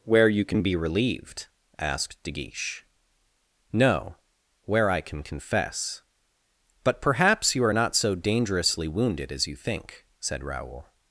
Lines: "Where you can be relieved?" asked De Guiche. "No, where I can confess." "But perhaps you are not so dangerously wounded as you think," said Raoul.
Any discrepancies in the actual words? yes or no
no